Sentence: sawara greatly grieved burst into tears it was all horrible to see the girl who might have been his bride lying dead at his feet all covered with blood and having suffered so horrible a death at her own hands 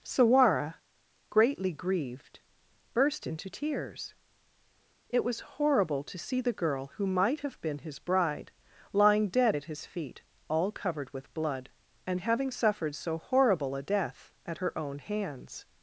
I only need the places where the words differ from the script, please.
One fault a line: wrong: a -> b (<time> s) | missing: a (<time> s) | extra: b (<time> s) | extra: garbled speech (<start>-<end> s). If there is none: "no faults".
missing: all (5.6 s)